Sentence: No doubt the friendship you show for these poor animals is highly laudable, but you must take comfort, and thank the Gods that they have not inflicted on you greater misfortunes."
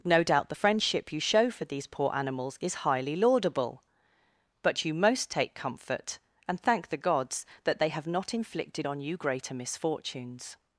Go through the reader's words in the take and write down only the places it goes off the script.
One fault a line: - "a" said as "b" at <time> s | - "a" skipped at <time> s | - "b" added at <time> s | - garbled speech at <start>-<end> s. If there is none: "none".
- "must" said as "most" at 4.9 s